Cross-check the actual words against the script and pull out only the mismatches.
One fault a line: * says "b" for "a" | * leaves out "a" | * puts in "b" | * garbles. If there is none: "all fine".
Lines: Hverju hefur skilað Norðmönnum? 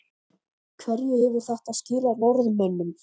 * puts in "þetta"